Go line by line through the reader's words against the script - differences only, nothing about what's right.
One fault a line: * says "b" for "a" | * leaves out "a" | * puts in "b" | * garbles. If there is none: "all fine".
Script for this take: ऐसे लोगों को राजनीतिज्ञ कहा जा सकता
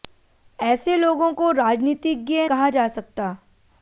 all fine